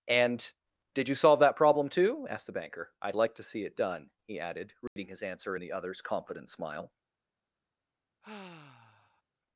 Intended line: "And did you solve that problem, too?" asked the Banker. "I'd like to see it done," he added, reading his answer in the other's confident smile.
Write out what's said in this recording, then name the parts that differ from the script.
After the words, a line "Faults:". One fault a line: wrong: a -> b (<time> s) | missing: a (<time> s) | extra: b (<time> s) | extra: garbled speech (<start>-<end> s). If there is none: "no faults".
"And did you solve that problem, too?" asked the Banker. "I'd like to see it done," he added, reading his answer in the other's confident smile.
Faults:
no faults